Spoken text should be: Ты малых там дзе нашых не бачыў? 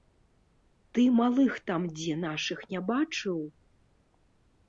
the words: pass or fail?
pass